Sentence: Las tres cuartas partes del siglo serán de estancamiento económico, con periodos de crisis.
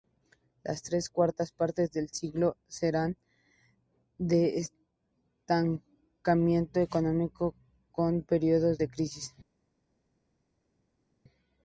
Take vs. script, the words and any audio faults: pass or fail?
pass